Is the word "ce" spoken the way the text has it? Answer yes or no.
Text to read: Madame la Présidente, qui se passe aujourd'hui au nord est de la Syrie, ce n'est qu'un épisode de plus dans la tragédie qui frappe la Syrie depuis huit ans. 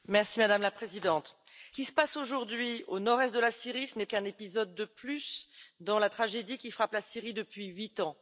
yes